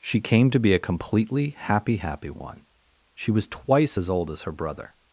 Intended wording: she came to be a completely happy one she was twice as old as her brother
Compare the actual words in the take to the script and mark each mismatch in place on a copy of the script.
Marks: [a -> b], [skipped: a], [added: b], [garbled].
she came to be a completely happy [added: happy] one she was twice as old as her brother